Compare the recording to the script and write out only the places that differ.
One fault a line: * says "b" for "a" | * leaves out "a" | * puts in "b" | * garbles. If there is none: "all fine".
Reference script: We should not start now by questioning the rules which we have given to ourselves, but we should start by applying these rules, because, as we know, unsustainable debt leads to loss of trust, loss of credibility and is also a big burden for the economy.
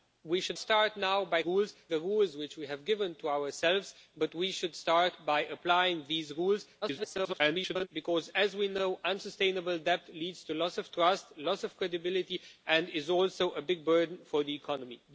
* leaves out "not"
* says "rules" for "questioning"
* garbles